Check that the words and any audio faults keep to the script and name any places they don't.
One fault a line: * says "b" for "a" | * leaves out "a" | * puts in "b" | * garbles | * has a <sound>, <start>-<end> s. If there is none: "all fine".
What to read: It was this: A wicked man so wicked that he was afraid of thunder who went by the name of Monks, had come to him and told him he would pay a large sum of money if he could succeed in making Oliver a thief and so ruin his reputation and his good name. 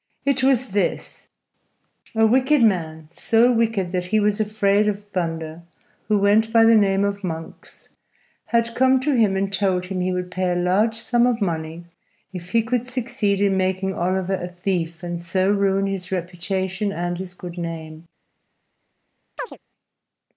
* has a chirp, 19.4-19.6 s